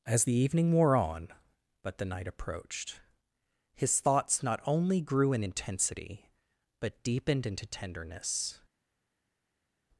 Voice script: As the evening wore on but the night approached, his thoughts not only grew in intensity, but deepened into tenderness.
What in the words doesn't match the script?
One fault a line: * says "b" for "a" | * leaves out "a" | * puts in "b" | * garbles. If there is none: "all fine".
all fine